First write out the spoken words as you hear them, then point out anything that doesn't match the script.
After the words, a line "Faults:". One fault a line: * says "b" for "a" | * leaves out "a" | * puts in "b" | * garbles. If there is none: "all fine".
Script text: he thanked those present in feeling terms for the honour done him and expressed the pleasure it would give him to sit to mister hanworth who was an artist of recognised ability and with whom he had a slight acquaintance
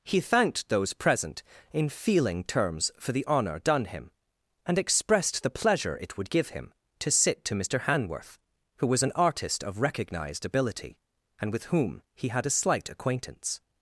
he thanked those present in feeling terms for the honour done him and expressed the pleasure it would give him to sit to mister hanworth who was an artist of recognised ability and with whom he had a slight acquaintance
Faults:
all fine